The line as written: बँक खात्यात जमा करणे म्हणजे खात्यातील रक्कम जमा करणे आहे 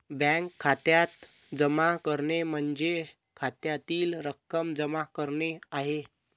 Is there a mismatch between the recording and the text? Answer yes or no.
no